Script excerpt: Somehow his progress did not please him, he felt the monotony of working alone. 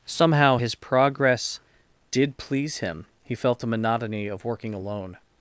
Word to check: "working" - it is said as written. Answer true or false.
true